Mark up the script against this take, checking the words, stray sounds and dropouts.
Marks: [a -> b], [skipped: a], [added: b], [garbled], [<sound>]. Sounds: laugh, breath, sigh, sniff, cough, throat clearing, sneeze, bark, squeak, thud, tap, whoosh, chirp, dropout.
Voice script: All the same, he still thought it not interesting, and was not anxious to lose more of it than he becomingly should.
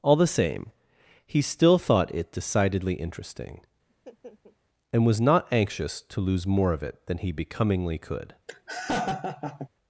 All the same, he still thought it [not -> decidedly] interesting, [laugh] and was not anxious to lose more of it than he becomingly [should. -> could] [laugh]